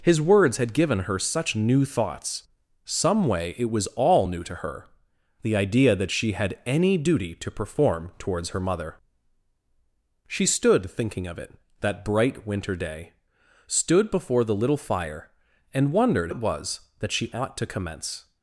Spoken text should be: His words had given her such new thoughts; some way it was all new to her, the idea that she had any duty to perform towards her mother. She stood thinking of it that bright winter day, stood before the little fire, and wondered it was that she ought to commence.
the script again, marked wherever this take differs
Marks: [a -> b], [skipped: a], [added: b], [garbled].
His words had given her such new thoughts; some way it was all new to her, the idea that she had any duty to perform towards her mother. She stood thinking of it that bright winter day, stood before the little fire, and wondered it was that she ought to commence.